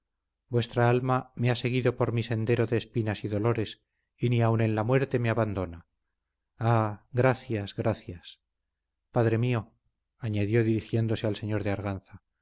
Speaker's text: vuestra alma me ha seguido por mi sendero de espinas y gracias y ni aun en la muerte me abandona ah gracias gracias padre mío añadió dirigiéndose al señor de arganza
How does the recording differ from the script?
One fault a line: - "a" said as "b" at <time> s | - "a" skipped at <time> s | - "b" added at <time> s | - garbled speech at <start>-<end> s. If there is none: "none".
- "gracias" said as "dolores" at 3.3 s